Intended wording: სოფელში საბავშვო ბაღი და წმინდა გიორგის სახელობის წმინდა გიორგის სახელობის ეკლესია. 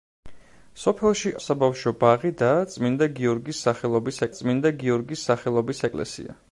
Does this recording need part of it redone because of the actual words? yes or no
no